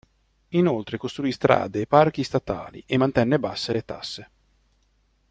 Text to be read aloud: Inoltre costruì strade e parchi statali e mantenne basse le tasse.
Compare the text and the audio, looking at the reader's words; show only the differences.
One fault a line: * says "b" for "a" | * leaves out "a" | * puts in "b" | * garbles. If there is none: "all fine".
all fine